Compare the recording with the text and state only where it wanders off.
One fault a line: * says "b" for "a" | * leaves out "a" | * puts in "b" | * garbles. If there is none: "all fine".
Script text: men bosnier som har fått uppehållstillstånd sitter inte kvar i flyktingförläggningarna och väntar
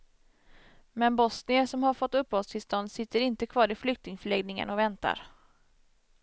all fine